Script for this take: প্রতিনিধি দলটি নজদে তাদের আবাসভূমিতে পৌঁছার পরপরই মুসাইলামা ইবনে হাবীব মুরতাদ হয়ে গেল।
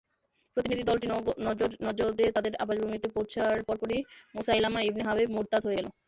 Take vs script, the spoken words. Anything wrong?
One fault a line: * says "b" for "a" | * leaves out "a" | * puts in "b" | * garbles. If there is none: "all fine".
all fine